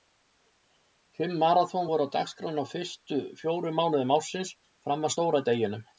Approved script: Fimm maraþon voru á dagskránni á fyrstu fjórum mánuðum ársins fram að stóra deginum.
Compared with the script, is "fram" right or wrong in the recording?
right